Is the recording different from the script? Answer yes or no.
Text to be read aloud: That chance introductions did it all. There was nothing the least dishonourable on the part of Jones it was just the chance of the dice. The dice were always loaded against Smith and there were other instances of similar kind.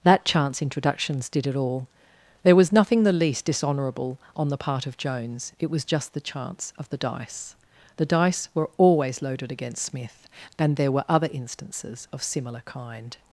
no